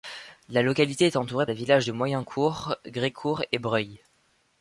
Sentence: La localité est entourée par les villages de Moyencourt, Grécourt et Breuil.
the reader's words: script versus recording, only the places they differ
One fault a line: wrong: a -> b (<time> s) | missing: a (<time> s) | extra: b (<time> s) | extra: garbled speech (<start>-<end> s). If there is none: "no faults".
missing: par (1.4 s)